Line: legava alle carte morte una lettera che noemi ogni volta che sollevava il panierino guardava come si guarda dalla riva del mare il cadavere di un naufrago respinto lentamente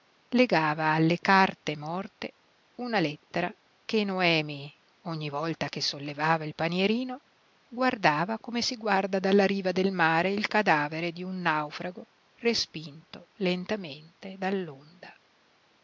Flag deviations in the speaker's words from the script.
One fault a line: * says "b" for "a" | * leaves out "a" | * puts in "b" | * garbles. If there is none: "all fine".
all fine